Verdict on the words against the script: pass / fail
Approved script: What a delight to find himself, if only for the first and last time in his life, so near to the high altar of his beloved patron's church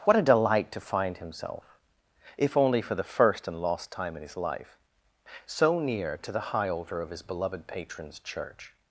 fail